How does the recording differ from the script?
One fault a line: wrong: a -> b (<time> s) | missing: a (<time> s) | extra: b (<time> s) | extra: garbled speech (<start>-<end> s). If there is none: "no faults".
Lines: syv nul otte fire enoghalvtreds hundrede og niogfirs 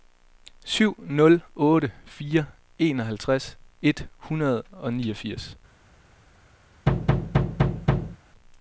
extra: et (3.8 s)